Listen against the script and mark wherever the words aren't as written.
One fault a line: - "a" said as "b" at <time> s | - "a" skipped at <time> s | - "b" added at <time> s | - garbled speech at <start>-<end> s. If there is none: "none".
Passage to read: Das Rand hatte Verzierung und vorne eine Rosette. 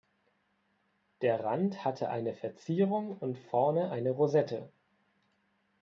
- "Das" said as "Der" at 1.2 s
- "eine" added at 2.1 s